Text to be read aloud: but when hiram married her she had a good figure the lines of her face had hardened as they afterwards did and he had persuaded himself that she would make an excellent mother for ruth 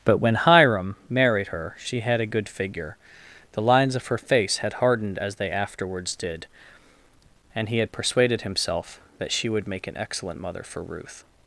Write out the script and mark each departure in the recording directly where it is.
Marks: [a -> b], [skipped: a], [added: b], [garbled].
but when hiram married her she had a good figure the lines of her face had hardened as they afterwards did and he had persuaded himself that she would make an excellent mother for ruth